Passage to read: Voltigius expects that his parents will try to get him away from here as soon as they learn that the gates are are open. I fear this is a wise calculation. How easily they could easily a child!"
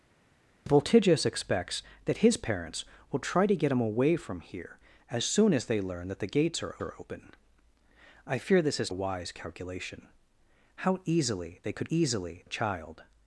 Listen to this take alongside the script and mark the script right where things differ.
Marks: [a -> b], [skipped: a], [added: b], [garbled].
Voltigius expects that his parents will try to get him away from here as soon as they learn that the gates are are open. I fear this is a wise calculation. How easily they could easily a child!"